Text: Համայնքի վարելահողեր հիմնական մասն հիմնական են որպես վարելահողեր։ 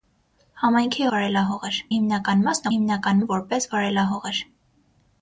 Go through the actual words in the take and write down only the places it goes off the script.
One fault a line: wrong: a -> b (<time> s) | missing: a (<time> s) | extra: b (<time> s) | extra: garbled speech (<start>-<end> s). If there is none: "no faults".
no faults